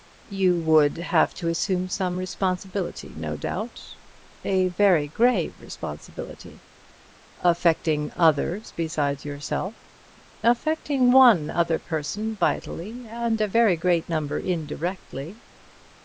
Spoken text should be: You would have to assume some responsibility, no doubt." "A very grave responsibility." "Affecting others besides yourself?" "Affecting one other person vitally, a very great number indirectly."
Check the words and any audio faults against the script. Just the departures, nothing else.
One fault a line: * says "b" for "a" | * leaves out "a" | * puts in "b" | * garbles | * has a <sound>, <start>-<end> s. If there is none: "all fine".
* puts in "and"